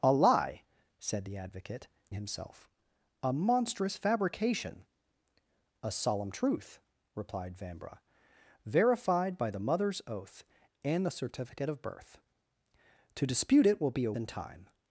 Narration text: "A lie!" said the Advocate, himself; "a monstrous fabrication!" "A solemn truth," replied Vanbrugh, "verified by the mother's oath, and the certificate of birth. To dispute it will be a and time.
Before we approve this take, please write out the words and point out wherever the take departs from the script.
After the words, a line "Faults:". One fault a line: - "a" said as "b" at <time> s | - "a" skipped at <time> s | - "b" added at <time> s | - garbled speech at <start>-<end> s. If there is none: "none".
"A lie!" said the Advocate, himself; "a monstrous fabrication!" "A solemn truth," replied Vanbrugh, "verified by the mother's oath, and the certificate of birth. To dispute it will be a and time.
Faults:
none